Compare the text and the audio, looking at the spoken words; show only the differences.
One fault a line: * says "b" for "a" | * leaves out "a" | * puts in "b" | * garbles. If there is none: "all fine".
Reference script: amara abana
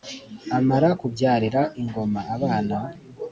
* puts in "kubyarira ingoma"